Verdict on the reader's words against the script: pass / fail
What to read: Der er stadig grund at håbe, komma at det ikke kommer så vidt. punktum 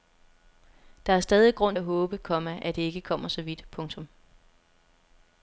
pass